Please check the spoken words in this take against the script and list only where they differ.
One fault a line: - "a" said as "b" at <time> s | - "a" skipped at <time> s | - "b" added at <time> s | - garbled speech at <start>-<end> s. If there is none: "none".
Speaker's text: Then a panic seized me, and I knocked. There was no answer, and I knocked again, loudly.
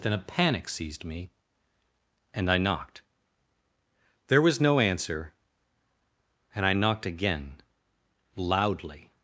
none